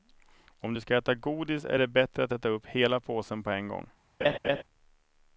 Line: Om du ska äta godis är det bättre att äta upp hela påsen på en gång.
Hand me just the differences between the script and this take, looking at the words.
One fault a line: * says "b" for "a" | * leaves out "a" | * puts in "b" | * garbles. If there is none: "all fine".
all fine